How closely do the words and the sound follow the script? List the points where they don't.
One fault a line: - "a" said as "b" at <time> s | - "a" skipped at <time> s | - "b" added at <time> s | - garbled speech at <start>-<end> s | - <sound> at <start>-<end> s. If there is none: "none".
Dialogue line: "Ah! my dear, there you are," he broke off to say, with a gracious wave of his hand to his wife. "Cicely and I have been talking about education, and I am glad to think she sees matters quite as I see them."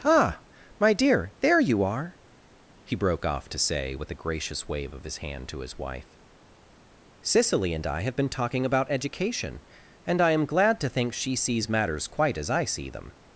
none